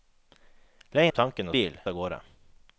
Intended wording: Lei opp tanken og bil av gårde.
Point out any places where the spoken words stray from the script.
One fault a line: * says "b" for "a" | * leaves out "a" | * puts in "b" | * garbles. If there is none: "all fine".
all fine